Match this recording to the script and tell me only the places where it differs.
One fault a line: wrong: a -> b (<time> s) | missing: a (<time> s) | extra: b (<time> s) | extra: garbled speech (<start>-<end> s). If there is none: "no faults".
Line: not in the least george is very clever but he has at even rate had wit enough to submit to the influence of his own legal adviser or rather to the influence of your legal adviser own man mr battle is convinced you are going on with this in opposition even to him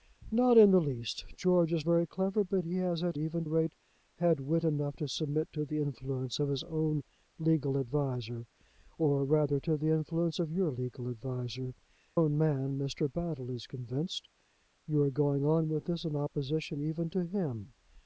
no faults